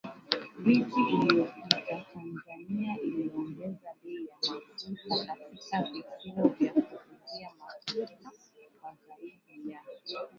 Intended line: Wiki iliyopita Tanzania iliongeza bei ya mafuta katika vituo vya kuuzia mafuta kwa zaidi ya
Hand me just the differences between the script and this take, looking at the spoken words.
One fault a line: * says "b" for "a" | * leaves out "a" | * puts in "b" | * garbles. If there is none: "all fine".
all fine